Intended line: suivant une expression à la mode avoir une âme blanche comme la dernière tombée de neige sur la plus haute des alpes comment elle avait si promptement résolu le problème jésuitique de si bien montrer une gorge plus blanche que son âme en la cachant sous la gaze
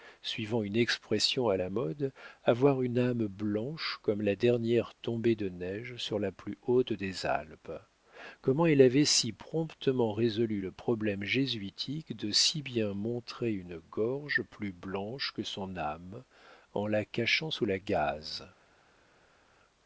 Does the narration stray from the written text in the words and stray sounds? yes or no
no